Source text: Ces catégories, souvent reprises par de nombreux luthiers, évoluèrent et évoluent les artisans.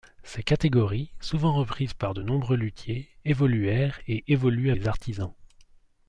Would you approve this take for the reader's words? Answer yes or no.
yes